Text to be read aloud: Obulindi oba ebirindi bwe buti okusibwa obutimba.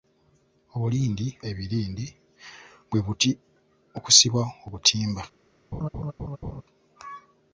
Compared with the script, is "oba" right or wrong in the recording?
wrong